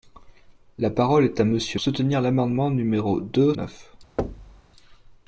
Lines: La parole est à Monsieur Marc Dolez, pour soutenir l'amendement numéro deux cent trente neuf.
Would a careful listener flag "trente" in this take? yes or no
yes